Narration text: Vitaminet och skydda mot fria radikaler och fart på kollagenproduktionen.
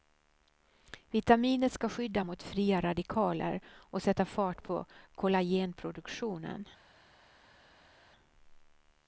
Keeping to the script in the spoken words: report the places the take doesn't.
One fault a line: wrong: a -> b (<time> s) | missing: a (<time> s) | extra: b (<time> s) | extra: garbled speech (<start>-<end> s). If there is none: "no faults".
wrong: och -> ska (1.7 s)
extra: sätta (4.0 s)